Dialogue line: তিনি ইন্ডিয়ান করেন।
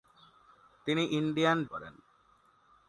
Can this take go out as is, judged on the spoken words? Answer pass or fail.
pass